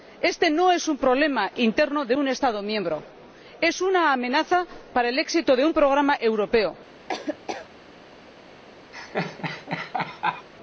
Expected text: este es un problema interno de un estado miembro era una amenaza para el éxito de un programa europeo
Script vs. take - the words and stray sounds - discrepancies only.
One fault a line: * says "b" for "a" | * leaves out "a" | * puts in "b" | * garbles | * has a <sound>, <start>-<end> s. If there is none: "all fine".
* puts in "no"
* says "es" for "era"
* has a laugh, 7.1-7.7 s
* has a laugh, 8.9-10.5 s